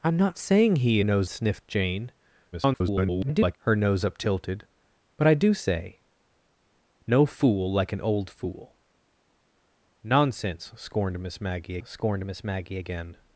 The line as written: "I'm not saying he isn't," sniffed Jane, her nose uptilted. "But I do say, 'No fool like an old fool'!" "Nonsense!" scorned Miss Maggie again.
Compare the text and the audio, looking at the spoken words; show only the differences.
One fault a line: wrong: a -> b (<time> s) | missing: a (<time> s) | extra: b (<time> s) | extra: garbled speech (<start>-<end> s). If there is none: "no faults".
wrong: isn't -> nose (1.0 s)
extra: garbled speech (2.5-3.6 s)
extra: scorned Miss Maggie (11.8 s)